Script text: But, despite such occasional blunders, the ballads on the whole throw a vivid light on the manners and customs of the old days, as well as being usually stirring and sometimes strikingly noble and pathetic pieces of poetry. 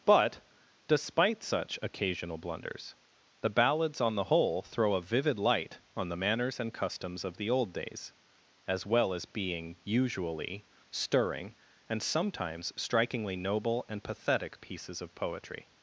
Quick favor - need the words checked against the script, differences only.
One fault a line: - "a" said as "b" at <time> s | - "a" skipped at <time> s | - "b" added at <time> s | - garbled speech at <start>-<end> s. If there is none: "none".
none